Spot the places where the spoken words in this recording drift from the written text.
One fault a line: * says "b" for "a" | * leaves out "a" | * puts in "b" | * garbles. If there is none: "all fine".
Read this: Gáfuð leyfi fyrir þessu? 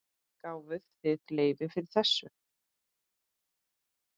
* puts in "þið"